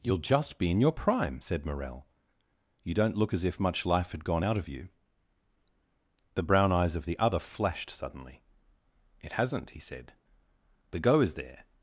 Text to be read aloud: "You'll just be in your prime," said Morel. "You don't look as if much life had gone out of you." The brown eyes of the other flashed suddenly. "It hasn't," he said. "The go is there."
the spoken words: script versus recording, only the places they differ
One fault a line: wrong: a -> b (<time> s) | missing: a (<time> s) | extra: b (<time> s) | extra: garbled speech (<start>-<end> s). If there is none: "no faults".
no faults